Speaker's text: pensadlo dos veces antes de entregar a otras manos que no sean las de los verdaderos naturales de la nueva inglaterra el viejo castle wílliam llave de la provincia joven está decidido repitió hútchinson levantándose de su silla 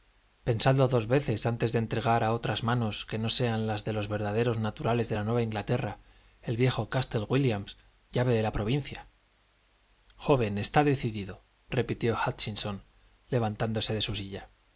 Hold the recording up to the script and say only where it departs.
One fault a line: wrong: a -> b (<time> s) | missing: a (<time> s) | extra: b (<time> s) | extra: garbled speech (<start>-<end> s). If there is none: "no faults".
no faults